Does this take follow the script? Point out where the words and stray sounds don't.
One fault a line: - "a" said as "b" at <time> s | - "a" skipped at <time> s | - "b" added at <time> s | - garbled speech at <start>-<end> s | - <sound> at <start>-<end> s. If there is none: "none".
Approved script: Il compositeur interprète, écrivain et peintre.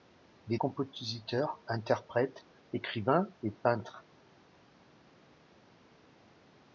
none